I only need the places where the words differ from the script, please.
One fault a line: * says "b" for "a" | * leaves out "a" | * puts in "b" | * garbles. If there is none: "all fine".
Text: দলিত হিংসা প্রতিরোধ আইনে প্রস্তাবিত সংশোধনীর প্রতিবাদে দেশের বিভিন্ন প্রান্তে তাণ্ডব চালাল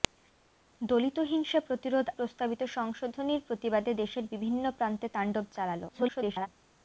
* leaves out "আইনে"
* garbles